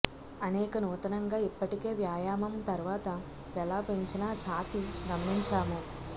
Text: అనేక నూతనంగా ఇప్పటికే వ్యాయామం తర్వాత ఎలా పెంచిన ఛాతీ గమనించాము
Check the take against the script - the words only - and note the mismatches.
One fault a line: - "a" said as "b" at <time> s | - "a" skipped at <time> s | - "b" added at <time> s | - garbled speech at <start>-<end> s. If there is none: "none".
none